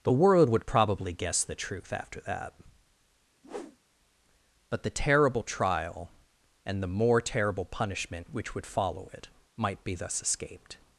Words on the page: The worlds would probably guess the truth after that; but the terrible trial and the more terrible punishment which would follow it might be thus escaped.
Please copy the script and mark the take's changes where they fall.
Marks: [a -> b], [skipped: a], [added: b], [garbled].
The [worlds -> world] would probably guess the truth after that; but the terrible trial and the more terrible punishment which would follow it might be thus escaped.